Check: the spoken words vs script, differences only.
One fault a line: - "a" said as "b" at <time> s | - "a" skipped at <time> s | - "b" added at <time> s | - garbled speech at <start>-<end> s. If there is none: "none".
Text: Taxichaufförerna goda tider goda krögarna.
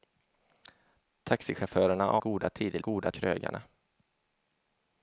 none